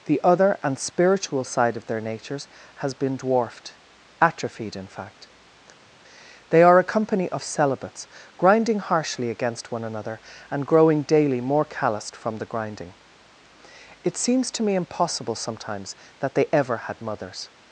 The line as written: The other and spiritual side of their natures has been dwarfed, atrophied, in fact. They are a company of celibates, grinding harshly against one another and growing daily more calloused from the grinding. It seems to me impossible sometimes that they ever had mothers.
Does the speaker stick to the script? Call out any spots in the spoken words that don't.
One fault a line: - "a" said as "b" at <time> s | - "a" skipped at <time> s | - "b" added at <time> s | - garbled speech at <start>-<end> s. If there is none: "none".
none